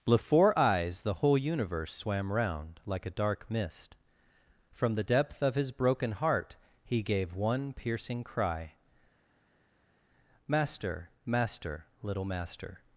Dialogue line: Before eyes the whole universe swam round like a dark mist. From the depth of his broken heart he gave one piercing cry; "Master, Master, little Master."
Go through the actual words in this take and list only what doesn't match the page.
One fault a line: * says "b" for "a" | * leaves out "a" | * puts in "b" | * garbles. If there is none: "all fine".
all fine